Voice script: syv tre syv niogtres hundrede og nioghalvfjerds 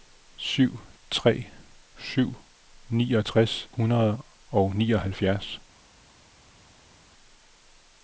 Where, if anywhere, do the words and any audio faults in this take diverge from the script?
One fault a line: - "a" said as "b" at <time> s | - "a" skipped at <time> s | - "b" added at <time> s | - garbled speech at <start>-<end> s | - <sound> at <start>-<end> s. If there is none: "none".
none